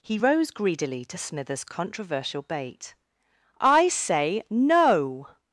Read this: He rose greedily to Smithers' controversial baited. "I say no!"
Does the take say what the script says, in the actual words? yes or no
no